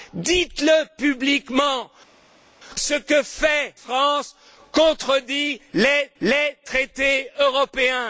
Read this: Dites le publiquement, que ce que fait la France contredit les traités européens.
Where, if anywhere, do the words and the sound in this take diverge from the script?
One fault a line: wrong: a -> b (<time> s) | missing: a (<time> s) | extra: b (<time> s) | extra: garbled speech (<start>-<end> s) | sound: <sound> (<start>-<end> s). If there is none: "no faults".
missing: que (1.9 s)
missing: la (3.7 s)
extra: les (6.2 s)